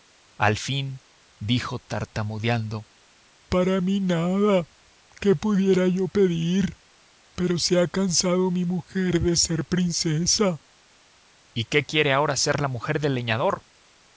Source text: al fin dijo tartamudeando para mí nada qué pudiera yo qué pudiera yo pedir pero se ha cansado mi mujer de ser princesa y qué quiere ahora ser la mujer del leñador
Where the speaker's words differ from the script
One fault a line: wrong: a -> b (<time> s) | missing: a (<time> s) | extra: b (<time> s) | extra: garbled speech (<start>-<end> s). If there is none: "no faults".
missing: qué pudiera yo (6.1 s)